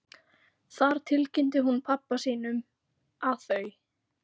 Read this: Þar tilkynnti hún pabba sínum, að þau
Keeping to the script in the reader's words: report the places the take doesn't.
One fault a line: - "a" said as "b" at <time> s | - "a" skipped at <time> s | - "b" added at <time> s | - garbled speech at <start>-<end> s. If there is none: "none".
none